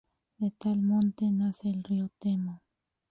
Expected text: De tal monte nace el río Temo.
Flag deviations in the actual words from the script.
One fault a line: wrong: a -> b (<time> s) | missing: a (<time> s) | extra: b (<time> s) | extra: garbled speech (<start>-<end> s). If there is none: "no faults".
no faults